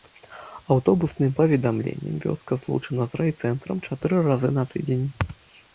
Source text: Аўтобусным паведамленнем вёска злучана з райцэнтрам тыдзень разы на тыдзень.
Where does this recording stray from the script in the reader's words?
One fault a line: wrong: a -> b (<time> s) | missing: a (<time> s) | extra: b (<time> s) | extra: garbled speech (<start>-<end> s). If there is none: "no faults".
wrong: тыдзень -> чатыры (3.9 s)